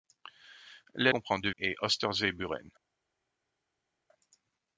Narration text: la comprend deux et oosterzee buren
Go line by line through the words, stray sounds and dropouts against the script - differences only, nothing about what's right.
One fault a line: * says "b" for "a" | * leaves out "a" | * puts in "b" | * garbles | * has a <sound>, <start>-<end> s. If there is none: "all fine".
all fine